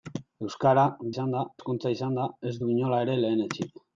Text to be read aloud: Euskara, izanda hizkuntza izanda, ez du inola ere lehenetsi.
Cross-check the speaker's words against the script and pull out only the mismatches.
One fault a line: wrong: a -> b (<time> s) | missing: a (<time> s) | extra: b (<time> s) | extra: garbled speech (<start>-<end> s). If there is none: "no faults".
no faults